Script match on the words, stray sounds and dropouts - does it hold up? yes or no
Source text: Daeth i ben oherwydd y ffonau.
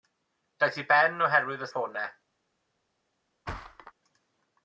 no